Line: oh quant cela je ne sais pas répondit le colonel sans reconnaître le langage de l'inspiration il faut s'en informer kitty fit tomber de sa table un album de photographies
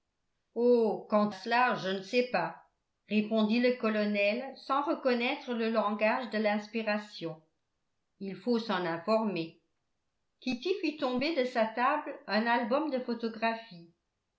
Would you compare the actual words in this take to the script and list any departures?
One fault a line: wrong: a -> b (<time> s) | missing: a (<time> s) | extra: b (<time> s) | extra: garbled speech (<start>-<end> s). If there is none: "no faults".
no faults